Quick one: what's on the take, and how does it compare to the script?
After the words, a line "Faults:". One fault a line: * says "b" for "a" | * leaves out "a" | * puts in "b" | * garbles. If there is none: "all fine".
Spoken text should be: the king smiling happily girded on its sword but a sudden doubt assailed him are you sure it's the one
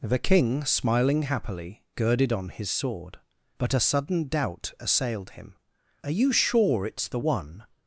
the king smiling happily girded on his sword but a sudden doubt assailed him are you sure it's the one
Faults:
* says "his" for "its"